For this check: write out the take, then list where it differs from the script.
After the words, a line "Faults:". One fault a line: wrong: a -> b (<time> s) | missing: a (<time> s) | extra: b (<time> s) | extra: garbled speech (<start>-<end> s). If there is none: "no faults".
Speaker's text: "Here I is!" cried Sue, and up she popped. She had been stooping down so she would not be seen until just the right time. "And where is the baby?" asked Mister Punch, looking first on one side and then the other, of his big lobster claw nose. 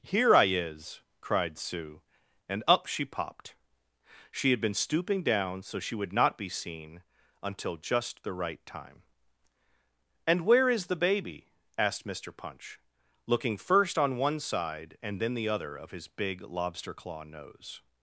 "Here I is!" cried Sue, and up she popped. She had been stooping down so she would not be seen until just the right time. "And where is the baby?" asked Mister Punch, looking first on one side and then the other, of his big lobster claw nose.
Faults:
no faults